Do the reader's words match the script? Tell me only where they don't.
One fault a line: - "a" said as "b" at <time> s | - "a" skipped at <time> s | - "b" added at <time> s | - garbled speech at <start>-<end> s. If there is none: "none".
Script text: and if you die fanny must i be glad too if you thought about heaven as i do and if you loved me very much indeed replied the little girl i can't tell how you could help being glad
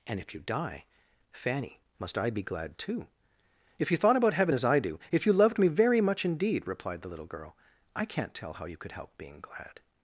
- "and" skipped at 5.0 s